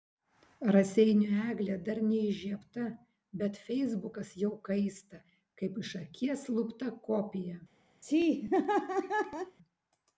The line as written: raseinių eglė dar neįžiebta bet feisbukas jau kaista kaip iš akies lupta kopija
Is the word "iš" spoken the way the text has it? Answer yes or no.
yes